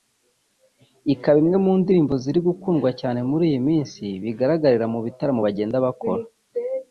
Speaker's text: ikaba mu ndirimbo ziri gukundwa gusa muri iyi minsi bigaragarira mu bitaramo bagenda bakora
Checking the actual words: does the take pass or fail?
fail